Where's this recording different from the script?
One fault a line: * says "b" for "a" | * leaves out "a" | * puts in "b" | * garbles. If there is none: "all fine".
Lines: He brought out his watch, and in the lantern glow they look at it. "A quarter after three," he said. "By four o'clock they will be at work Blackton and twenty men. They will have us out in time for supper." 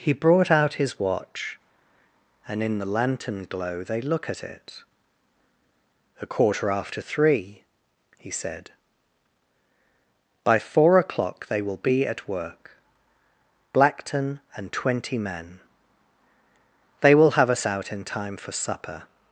all fine